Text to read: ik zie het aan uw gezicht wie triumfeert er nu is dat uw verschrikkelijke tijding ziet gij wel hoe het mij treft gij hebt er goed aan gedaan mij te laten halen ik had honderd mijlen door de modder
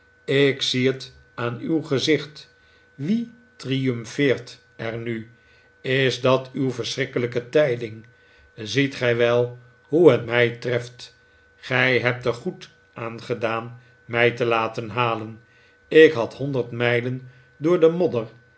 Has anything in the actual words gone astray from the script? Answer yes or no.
no